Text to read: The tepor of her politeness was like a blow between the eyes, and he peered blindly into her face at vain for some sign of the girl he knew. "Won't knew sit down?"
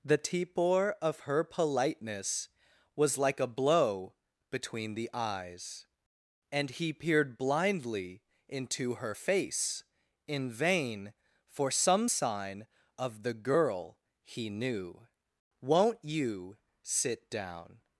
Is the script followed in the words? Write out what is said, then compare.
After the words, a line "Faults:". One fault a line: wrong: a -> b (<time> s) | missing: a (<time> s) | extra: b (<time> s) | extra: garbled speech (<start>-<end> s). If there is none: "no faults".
The tepor of her politeness was like a blow between the eyes, and he peered blindly into her face in vain for some sign of the girl he knew. "Won't you sit down?"
Faults:
wrong: at -> in (10.3 s)
wrong: knew -> you (16.0 s)